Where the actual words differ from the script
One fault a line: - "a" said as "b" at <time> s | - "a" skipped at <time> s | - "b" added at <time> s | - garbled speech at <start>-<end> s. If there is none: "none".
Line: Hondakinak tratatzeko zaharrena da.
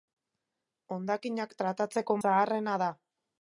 none